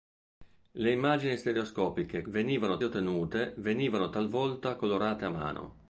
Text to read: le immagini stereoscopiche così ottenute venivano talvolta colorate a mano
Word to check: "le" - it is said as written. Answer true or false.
true